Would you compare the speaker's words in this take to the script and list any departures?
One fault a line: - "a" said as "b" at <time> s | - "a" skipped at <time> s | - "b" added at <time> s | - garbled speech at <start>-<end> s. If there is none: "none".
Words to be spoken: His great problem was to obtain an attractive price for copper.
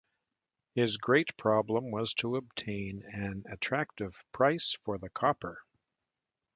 - "the" added at 5.0 s